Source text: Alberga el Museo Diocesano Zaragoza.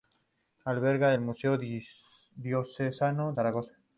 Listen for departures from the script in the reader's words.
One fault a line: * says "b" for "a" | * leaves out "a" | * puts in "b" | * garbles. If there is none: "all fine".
all fine